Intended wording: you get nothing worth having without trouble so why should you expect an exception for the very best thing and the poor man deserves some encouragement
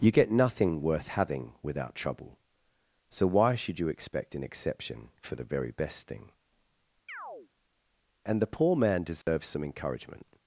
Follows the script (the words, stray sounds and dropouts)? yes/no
no